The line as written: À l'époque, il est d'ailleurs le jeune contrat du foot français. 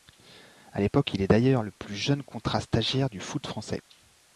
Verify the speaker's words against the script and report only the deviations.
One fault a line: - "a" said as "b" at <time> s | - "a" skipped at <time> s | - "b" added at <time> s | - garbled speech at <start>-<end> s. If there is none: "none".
- "plus" added at 1.7 s
- "stagiaire" added at 2.6 s